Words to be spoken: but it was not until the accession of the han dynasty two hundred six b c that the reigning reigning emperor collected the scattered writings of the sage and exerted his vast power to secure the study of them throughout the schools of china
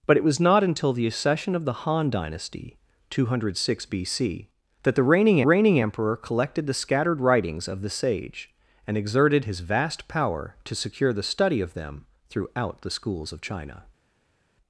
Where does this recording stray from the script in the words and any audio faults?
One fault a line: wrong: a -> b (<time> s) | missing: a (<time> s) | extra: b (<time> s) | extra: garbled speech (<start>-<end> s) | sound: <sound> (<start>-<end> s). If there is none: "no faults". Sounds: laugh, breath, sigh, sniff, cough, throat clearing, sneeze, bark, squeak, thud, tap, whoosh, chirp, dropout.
no faults